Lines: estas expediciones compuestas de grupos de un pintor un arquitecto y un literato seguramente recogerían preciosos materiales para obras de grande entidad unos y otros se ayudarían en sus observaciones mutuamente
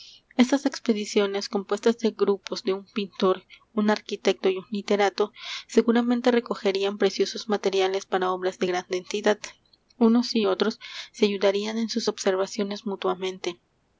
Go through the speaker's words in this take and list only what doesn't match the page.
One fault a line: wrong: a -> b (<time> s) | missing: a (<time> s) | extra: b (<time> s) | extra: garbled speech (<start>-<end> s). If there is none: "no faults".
no faults